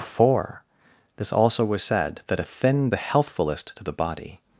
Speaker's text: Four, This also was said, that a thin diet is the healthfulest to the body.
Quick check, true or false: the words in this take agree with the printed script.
false